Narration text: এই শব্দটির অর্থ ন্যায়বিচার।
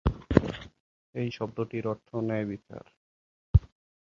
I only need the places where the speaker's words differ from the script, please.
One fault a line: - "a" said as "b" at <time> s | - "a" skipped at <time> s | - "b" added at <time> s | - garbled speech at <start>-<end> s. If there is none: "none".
none